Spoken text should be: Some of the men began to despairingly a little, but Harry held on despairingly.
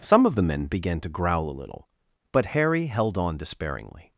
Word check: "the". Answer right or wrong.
right